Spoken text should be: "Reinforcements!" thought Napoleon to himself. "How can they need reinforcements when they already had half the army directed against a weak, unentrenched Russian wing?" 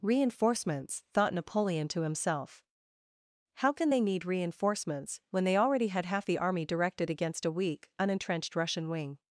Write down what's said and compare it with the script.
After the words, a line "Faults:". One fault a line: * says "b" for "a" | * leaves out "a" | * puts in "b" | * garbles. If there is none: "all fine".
"Reinforcements!" thought Napoleon to himself. "How can they need reinforcements when they already had half the army directed against a weak, unentrenched Russian wing?"
Faults:
all fine